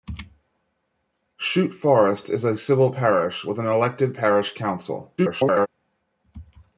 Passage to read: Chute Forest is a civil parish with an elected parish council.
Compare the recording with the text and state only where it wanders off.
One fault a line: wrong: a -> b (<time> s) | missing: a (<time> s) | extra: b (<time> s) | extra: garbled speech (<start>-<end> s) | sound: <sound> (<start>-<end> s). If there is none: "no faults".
extra: garbled speech (5.2-5.7 s)